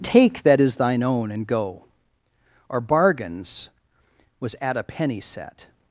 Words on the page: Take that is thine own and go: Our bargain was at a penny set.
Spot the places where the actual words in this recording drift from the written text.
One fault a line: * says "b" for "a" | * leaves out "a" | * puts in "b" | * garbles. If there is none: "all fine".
* says "bargains" for "bargain"